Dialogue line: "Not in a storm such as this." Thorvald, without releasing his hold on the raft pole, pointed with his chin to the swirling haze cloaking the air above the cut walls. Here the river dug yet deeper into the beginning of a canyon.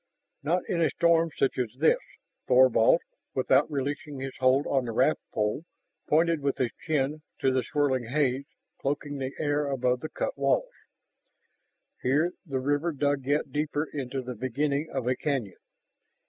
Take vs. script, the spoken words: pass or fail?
pass